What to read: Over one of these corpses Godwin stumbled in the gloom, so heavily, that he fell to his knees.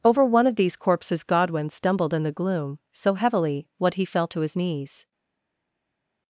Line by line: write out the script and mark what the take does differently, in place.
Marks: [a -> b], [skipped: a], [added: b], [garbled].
Over one of these corpses Godwin stumbled in the gloom, so heavily, [that -> what] he fell to his knees.